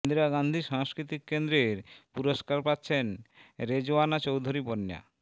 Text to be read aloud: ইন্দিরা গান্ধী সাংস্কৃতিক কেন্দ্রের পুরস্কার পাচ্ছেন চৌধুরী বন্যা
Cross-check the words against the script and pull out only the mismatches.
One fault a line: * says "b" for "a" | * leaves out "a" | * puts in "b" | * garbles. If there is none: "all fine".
* puts in "রেজওয়ানা"